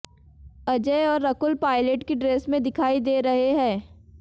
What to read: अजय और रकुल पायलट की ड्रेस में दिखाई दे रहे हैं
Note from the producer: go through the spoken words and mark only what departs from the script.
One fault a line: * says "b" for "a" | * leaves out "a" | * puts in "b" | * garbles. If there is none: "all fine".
all fine